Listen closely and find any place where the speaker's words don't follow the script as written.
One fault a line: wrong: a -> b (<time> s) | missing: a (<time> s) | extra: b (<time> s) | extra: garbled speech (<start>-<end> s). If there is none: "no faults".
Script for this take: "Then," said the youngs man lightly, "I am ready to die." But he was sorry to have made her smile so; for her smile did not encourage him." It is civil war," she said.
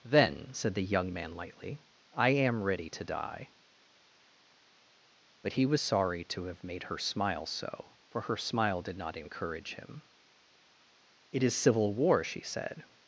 wrong: youngs -> young (0.8 s)